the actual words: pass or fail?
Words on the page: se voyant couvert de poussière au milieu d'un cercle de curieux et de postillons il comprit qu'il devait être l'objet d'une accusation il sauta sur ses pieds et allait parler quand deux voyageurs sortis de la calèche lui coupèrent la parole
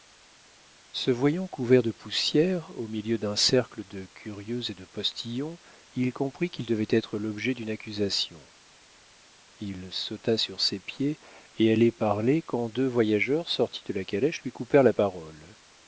pass